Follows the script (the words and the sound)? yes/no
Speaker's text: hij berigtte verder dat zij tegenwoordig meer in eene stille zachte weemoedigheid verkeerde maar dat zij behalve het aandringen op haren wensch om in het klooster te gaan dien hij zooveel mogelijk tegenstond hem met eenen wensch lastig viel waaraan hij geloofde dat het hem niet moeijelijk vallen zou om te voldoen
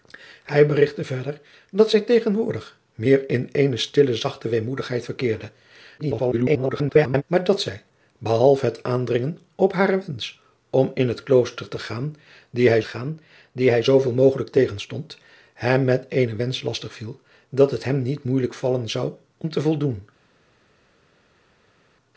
no